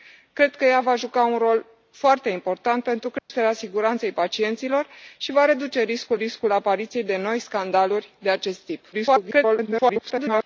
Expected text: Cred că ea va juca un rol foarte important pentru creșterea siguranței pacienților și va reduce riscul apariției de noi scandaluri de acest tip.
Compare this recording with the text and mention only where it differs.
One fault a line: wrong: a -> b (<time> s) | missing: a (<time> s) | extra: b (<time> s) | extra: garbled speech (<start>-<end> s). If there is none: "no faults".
extra: riscul (6.1 s)
extra: garbled speech (8.9-10.4 s)